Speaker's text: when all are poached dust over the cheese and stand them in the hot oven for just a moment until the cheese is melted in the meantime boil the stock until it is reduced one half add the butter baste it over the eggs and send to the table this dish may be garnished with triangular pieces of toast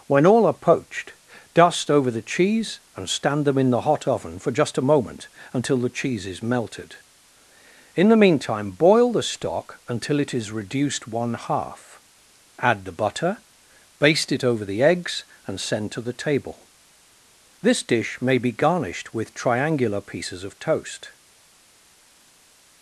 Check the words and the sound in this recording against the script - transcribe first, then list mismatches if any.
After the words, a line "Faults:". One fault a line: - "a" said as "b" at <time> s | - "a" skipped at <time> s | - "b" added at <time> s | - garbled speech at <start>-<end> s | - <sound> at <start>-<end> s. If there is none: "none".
when all are poached dust over the cheese and stand them in the hot oven for just a moment until the cheese is melted in the meantime boil the stock until it is reduced one half add the butter baste it over the eggs and send to the table this dish may be garnished with triangular pieces of toast
Faults:
none